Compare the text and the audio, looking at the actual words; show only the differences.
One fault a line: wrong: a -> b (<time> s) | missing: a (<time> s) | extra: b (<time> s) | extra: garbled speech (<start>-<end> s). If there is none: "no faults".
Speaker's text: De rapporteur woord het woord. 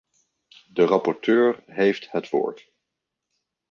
wrong: woord -> heeft (1.6 s)